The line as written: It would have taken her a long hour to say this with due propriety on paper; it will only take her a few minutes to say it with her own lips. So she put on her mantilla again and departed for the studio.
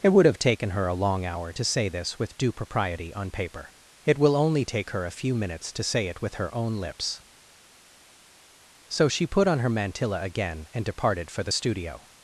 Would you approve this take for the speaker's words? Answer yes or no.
yes